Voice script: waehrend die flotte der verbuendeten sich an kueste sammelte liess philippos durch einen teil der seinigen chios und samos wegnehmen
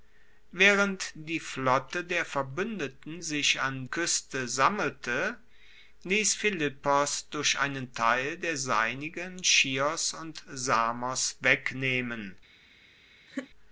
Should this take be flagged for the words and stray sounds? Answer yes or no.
yes